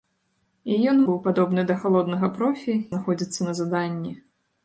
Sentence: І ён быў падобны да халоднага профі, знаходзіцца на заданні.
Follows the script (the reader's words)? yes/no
yes